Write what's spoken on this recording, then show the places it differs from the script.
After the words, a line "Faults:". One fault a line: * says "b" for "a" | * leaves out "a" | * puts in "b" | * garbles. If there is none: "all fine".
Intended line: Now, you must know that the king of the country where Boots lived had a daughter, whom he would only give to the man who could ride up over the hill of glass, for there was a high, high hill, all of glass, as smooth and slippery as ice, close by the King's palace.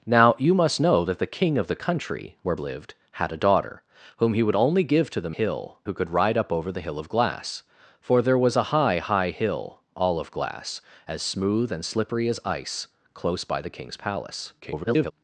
Now, you must know that the king of the country where Lived had a daughter, whom he would only give to the hill who could ride up over the hill of glass, for there was a high, high hill, all of glass, as smooth and slippery as ice, close by the King's palace. [garbled]
Faults:
* leaves out "Boots"
* says "hill" for "man"
* garbles